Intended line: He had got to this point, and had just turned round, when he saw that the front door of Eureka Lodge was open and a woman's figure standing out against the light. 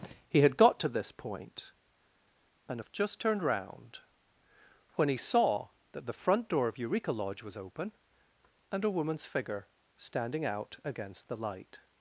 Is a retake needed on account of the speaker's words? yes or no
yes